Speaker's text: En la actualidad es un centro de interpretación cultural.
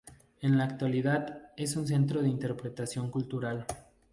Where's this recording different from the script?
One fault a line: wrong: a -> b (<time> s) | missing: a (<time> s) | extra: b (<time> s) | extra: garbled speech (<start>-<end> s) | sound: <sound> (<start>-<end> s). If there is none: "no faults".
no faults